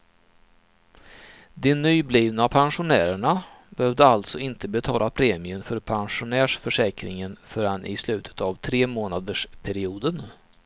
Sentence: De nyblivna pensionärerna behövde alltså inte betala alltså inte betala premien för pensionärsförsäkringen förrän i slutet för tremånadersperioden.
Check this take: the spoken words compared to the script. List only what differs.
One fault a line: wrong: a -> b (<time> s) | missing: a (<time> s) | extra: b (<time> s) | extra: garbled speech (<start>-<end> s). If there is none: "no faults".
missing: alltså inte betala (5.1 s)
wrong: för -> av (8.4 s)